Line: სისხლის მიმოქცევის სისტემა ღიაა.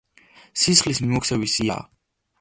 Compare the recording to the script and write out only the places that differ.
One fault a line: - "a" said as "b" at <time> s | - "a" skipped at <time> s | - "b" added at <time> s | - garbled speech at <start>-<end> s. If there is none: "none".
- "სისტემა" skipped at 1.6 s